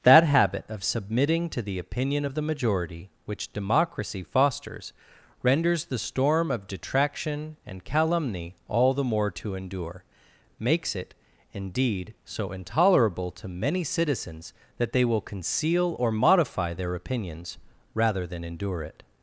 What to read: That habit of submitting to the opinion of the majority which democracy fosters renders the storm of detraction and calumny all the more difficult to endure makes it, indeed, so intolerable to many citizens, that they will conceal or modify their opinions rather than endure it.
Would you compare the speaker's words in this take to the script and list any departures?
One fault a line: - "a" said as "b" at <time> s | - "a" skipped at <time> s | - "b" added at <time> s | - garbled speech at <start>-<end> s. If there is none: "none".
- "difficult" skipped at 9.3 s